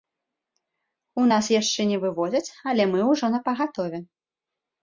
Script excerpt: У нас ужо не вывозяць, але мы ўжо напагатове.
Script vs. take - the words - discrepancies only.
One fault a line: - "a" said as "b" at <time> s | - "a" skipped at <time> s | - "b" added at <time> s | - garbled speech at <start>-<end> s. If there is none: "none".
- "ужо" said as "яшчэ" at 1.6 s